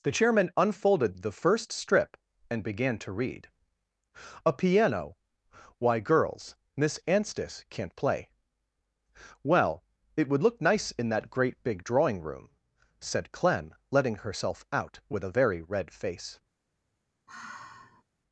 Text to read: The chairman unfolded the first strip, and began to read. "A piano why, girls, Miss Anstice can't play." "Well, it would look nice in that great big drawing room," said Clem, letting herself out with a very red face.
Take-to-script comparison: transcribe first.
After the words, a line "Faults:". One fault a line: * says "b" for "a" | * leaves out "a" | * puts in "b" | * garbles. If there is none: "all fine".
The chairman unfolded the first strip, and began to read. "A piano why, girls, Miss Anstice can't play." "Well, it would look nice in that great big drawing room," said Clem, letting herself out with a very red face.
Faults:
all fine